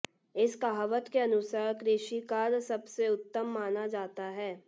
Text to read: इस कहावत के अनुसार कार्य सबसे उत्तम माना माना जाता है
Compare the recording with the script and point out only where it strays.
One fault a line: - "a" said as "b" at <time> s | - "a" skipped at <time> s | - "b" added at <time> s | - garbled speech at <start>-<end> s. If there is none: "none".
- "कृषि" added at 1.7 s
- "माना" skipped at 3.9 s